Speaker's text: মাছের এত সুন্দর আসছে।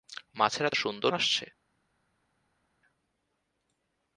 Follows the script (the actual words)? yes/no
yes